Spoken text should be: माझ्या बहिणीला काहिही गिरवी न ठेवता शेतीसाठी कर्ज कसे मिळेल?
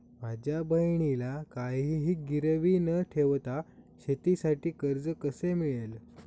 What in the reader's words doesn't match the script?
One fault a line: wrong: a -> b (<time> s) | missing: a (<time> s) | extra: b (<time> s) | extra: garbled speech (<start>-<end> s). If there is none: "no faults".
no faults